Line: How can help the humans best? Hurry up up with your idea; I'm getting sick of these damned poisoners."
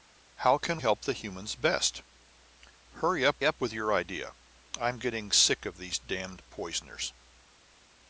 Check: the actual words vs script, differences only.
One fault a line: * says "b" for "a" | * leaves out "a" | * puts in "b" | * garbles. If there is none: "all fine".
all fine